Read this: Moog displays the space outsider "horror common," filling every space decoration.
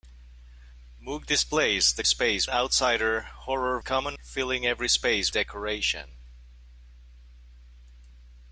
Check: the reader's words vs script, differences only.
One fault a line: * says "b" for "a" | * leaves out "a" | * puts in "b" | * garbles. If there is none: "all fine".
all fine